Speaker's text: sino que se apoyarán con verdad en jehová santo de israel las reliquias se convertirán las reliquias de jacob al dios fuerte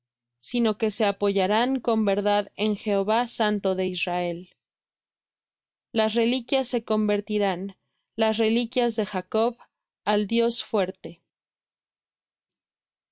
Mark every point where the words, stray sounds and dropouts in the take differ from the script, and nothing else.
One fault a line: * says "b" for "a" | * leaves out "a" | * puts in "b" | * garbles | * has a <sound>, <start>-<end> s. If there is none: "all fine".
all fine